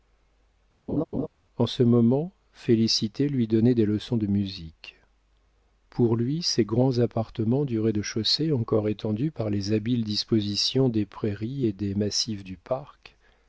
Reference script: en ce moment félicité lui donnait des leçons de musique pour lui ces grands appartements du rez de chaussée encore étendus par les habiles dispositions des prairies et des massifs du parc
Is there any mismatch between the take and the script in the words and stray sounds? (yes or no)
yes